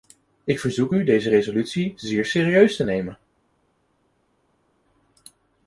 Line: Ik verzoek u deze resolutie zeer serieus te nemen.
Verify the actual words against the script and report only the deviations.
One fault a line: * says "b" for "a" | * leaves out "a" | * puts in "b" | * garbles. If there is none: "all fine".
all fine